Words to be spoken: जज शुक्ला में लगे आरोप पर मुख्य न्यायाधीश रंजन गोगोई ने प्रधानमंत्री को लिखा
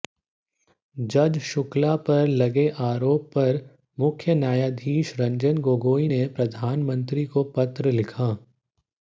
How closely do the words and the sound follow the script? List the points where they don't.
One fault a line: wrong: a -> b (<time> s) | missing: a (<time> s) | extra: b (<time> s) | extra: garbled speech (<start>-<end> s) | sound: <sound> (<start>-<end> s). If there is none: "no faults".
wrong: में -> पर (2.1 s)
extra: पत्र (7.6 s)